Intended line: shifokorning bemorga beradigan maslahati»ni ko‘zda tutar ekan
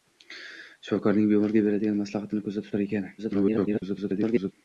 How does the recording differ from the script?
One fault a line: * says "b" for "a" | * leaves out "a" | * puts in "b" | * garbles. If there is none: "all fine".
* garbles